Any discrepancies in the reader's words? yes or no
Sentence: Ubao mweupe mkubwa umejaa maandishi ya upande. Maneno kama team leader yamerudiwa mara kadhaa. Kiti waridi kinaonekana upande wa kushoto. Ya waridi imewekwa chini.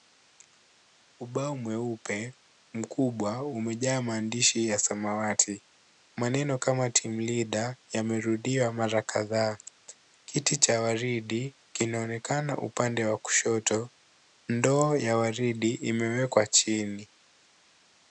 yes